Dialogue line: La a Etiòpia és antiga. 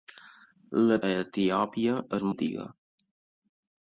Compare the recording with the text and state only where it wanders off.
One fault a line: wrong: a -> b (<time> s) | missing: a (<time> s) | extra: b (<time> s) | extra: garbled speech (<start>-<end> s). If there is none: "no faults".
no faults